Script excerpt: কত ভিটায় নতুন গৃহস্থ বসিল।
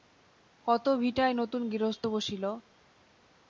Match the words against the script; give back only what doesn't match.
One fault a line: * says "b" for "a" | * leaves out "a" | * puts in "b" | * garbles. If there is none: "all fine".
all fine